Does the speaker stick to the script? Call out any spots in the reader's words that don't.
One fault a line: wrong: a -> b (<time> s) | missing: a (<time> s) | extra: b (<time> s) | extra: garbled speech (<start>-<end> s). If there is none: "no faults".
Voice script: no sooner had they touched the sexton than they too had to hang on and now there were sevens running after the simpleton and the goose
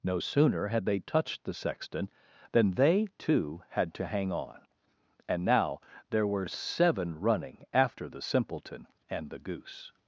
wrong: sevens -> seven (6.5 s)